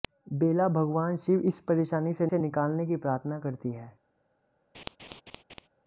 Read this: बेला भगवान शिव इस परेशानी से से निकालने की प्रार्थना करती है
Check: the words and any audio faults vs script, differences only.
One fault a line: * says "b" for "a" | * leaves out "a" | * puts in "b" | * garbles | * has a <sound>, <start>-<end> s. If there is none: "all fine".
* has a laugh, 4.7-5.7 s